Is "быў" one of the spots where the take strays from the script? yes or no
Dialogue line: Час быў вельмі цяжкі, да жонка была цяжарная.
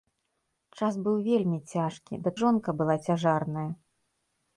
no